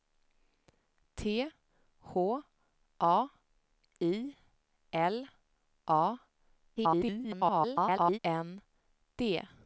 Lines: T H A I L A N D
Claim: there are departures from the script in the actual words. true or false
true